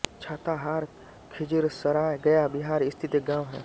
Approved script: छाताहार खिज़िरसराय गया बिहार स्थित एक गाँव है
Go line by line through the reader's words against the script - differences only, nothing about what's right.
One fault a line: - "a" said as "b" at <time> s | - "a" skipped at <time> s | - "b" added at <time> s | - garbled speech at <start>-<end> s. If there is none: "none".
none